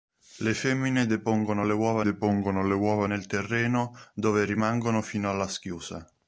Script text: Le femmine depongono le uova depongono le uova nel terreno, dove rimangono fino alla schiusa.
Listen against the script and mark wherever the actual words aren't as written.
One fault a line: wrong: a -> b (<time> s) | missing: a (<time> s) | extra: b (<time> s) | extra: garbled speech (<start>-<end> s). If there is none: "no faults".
no faults